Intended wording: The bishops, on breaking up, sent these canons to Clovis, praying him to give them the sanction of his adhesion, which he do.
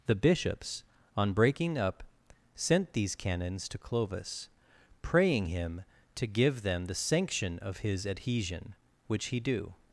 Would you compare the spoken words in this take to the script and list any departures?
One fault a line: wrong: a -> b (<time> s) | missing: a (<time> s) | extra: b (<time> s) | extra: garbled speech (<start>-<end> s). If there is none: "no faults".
no faults